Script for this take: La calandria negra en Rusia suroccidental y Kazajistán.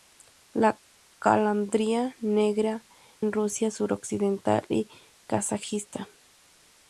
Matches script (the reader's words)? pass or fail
pass